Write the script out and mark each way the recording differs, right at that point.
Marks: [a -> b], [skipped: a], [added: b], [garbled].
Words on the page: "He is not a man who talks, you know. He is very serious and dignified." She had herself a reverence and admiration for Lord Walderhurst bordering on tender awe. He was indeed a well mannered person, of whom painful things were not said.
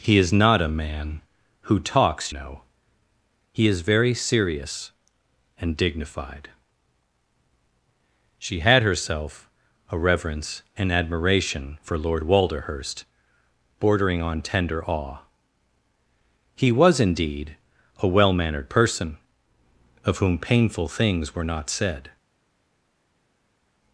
"He is not a man who talks, [skipped: you] know. He is very serious and dignified." She had herself a reverence and admiration for Lord Walderhurst bordering on tender awe. He was indeed a well mannered person, of whom painful things were not said.